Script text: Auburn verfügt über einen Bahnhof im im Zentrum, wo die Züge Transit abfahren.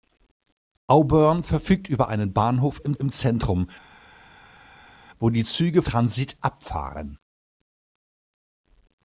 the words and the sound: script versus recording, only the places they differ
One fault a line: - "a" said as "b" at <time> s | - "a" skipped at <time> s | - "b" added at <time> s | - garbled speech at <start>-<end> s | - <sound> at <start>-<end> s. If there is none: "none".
none